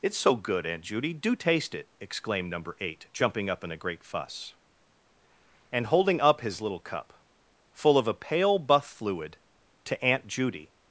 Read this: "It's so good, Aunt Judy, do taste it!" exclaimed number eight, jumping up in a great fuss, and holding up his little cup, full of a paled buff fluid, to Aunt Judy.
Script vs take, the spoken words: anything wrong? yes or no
yes